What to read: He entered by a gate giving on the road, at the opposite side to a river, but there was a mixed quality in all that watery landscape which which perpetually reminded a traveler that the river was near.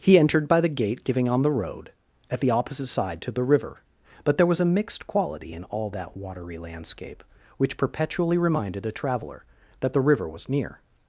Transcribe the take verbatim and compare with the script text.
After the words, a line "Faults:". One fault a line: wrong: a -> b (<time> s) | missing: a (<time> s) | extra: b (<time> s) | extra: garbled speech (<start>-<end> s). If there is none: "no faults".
He entered by the gate giving on the road, at the opposite side to the river, but there was a mixed quality in all that watery landscape which perpetually reminded a traveler that the river was near.
Faults:
wrong: a -> the (0.6 s)
wrong: a -> the (3.3 s)
missing: which (7.8 s)